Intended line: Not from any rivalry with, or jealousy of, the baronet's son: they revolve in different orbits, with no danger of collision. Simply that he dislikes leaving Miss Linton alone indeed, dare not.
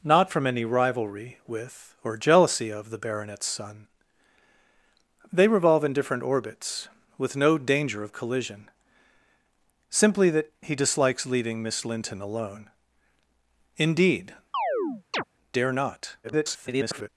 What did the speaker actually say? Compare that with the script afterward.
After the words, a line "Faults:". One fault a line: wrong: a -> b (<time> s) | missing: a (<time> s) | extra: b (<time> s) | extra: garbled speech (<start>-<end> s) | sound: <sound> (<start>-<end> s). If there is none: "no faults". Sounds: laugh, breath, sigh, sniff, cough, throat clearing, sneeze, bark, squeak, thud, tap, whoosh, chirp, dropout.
Not from any rivalry with, or jealousy of, the baronet's son: they revolve in different orbits, with no danger of collision. Simply that he dislikes leaving Miss Linton alone indeed, dare not. [garbled]
Faults:
sound: chirp (14.5-15.2 s)
extra: garbled speech (16.2-17.1 s)